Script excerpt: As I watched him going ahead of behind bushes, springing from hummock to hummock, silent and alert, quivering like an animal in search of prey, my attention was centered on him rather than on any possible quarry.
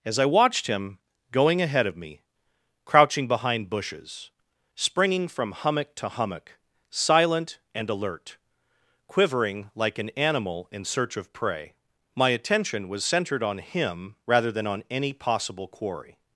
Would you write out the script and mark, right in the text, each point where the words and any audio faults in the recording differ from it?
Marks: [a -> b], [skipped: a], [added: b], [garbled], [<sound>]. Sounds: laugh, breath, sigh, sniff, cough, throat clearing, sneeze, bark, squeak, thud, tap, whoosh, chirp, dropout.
As I watched him going ahead of [added: me crouching] behind bushes, springing from hummock to hummock, silent and alert, quivering like an animal in search of prey, my attention was centered on him rather than on any possible quarry.